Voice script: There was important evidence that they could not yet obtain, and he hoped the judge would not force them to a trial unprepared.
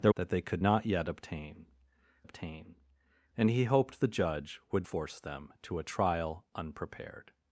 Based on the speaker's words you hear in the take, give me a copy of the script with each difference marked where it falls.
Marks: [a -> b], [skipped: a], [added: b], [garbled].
There [skipped: was important evidence] that they could not yet obtain, [added: obtain] and he hoped the judge would [skipped: not] force them to a trial unprepared.